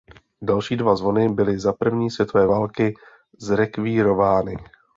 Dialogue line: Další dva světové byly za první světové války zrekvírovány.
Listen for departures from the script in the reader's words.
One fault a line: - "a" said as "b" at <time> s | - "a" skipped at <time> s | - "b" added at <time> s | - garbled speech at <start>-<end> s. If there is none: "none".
- "světové" said as "zvony" at 0.9 s